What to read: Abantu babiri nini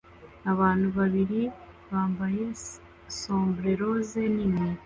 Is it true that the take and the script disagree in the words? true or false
true